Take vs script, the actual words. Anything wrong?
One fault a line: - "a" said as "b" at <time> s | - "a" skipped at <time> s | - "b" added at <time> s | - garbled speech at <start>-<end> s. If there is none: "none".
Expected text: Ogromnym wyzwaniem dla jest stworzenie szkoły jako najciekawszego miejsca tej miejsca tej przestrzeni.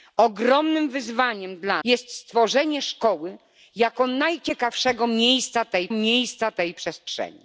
none